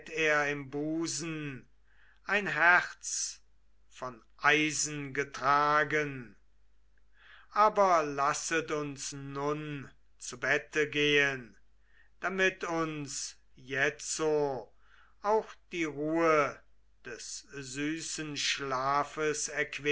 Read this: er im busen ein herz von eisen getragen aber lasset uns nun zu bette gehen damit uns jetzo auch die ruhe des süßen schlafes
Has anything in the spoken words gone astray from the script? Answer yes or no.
no